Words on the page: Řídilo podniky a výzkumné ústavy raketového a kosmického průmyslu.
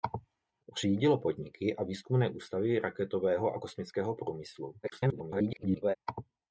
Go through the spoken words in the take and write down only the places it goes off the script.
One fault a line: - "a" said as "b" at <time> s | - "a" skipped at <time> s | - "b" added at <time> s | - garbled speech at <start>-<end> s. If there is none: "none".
- garbled speech at 4.8-6.0 s